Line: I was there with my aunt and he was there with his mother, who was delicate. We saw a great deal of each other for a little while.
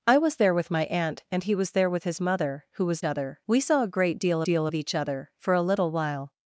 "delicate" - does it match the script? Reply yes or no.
no